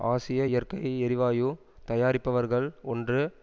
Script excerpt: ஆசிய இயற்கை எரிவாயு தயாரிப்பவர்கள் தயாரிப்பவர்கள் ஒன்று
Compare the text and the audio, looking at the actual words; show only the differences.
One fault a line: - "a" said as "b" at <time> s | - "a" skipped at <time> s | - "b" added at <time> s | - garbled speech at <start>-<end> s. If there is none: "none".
- "தயாரிப்பவர்கள்" skipped at 2.7 s